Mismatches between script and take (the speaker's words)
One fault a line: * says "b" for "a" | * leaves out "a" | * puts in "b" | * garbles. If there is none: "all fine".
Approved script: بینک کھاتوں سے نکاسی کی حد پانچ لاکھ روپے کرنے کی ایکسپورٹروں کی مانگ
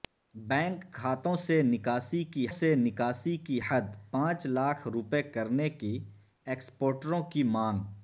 * puts in "سے نکاسی کی"